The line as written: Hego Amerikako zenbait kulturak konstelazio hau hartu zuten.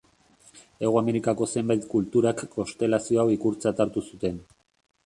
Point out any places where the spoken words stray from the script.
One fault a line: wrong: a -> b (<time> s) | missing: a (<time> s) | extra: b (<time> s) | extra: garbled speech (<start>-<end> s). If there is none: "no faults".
extra: ikurtzat (3.4 s)